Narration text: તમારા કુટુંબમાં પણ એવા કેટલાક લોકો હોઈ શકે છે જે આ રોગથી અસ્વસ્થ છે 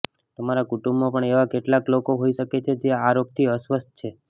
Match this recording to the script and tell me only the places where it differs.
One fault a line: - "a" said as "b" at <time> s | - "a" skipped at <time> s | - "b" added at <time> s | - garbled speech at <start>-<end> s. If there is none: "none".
none